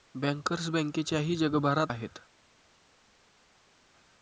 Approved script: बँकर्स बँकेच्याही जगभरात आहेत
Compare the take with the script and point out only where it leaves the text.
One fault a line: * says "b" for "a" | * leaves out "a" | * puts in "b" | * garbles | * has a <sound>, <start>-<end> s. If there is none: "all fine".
all fine